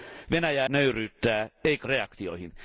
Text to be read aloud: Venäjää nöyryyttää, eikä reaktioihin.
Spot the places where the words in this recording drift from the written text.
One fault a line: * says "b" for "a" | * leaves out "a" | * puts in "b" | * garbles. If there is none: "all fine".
all fine